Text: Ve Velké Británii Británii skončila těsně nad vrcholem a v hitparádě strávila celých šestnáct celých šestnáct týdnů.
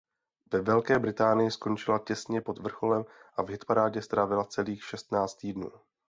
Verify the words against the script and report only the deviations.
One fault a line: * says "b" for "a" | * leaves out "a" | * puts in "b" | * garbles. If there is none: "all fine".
* leaves out "Británii"
* says "pod" for "nad"
* leaves out "celých šestnáct"